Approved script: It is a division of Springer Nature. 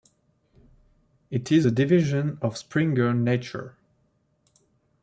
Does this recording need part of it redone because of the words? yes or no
no